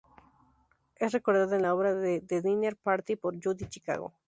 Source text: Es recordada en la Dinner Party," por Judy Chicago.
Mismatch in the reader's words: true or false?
true